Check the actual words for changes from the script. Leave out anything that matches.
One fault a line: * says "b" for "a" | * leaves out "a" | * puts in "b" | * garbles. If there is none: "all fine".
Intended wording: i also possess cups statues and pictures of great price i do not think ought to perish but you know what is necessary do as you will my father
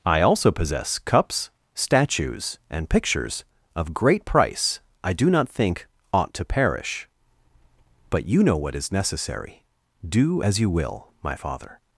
all fine